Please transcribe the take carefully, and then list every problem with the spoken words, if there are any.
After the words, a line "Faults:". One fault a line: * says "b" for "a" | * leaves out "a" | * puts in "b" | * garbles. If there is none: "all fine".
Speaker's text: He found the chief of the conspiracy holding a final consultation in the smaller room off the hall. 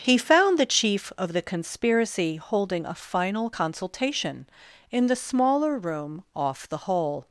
He found the chief of the conspiracy holding a final consultation in the smaller room off the hall.
Faults:
all fine